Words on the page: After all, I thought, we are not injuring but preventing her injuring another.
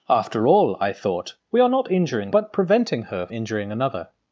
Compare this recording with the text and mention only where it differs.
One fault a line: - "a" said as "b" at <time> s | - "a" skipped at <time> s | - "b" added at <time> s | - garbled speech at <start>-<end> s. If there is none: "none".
none